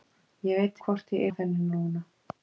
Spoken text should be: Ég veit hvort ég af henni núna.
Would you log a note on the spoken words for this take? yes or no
no